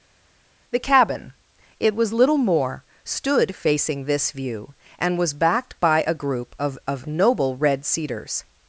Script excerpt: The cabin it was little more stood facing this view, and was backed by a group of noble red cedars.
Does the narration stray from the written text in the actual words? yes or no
yes